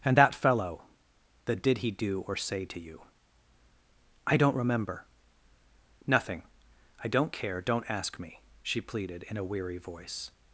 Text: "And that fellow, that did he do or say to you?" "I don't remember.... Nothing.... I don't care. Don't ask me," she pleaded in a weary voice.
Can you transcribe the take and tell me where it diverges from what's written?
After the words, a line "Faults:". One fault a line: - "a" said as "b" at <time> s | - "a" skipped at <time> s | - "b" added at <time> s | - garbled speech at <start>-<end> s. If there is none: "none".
"And that fellow, that did he do or say to you?" "I don't remember.... Nothing.... I don't care. Don't ask me," she pleaded in a weary voice.
Faults:
none